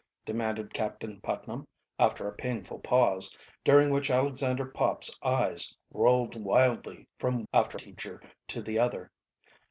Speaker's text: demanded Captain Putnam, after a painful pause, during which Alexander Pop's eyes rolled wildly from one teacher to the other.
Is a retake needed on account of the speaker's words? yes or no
yes